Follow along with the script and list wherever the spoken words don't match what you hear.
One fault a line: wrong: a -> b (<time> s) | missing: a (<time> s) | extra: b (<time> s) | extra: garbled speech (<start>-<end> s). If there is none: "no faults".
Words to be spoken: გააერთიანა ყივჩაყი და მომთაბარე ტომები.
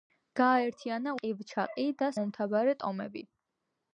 no faults